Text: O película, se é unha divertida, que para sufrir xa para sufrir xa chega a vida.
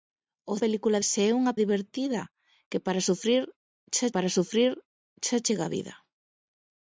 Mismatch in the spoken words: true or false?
false